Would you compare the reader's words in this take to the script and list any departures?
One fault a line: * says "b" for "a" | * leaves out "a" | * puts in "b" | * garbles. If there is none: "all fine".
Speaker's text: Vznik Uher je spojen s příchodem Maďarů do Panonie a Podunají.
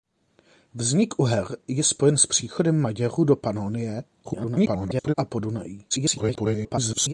* garbles
* garbles